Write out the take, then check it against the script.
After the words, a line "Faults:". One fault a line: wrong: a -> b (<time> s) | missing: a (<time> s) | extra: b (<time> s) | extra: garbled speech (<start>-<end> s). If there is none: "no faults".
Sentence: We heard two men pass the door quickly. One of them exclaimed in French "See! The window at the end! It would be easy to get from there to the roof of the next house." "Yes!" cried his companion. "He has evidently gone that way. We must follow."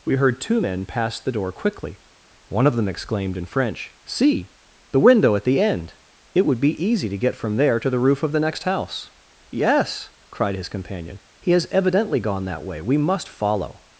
We heard two men pass the door quickly. One of them exclaimed in French "See! The window at the end! It would be easy to get from there to the roof of the next house." "Yes!" cried his companion. "He has evidently gone that way. We must follow."
Faults:
no faults